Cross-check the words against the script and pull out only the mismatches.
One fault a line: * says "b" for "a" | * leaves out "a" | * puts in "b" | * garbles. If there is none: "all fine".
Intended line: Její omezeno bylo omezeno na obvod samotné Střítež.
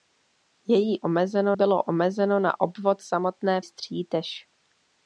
all fine